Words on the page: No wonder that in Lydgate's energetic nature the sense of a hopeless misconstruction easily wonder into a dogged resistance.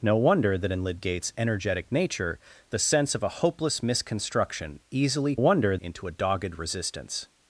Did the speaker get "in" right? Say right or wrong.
right